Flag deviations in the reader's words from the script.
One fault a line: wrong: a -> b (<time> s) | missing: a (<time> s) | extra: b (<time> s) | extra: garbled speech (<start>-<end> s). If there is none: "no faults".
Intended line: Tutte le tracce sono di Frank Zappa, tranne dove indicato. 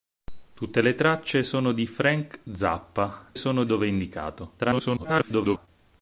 wrong: tranne -> sono (3.3 s)
extra: garbled speech (4.6-5.7 s)